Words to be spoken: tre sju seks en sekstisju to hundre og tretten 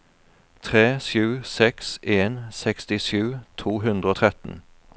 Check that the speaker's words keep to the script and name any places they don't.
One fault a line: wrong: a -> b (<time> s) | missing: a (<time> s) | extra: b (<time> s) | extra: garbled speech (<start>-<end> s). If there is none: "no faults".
no faults